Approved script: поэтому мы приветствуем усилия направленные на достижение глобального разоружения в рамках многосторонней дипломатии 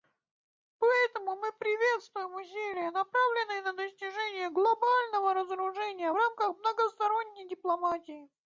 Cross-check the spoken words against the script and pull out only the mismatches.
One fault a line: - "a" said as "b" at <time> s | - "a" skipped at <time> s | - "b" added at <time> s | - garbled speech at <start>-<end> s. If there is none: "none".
none